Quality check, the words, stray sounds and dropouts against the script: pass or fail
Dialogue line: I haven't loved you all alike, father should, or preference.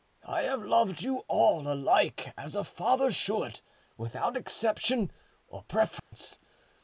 fail